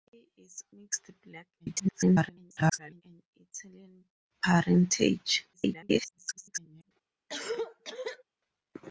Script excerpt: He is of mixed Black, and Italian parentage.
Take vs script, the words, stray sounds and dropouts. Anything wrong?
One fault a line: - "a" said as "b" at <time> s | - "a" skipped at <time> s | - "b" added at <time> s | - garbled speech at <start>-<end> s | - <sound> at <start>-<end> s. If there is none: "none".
- "of" skipped at 0.6 s
- garbled speech at 1.6-3.0 s
- garbled speech at 5.5-6.9 s
- cough at 7.3-8.2 s